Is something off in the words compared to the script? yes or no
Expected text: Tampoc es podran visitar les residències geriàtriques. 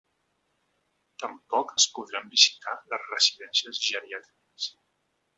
no